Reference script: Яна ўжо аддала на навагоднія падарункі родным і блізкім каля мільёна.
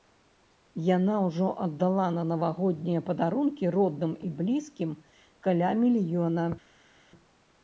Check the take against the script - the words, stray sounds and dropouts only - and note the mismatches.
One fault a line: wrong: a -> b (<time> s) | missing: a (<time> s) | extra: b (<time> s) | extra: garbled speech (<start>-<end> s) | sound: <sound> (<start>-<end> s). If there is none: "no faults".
no faults